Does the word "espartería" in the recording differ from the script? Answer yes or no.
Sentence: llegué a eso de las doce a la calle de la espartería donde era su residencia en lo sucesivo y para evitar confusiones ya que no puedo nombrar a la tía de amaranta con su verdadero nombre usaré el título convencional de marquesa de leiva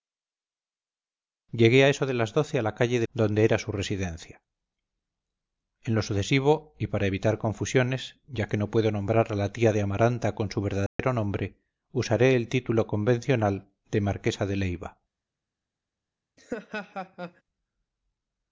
yes